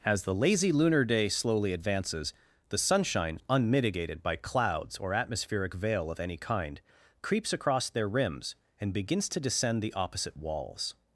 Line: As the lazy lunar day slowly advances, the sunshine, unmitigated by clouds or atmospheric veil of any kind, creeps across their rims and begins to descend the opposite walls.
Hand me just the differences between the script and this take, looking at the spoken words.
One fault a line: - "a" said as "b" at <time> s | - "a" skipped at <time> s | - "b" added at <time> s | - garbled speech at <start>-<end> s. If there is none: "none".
none